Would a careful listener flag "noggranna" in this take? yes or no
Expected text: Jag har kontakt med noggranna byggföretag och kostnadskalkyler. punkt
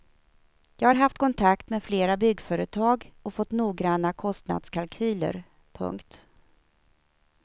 yes